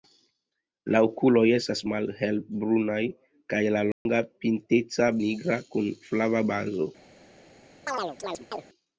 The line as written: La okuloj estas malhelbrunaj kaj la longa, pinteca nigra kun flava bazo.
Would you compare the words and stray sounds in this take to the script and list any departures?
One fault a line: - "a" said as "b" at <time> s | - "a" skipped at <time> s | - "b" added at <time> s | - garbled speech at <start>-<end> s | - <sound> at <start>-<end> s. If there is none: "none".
- dropout at 3.9-4.1 s
- chirp at 7.9-8.7 s